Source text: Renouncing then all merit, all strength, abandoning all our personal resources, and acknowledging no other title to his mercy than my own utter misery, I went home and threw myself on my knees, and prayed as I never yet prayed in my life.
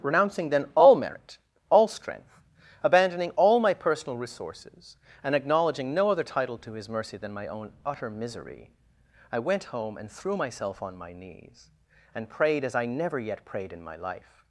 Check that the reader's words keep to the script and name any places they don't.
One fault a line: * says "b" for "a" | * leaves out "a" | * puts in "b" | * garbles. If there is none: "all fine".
* says "my" for "our"